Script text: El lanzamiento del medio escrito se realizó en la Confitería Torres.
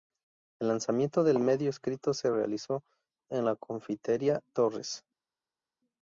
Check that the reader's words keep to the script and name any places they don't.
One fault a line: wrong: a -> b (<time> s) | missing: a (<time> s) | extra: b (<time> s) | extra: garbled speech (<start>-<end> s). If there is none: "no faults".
no faults